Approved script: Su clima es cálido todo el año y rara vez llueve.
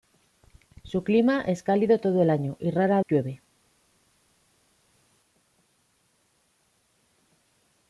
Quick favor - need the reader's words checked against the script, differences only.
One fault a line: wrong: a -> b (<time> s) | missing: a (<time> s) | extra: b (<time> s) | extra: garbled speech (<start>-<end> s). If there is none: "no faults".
missing: vez (3.0 s)